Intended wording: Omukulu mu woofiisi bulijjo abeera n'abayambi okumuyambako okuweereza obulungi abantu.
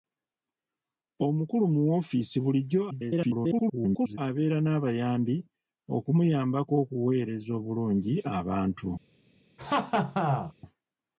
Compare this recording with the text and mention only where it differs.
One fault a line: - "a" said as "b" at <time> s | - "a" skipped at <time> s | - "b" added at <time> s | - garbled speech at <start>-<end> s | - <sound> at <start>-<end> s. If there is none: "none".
- garbled speech at 2.9-4.2 s
- laugh at 9.6-10.5 s